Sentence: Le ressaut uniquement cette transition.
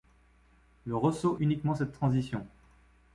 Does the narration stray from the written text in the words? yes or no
no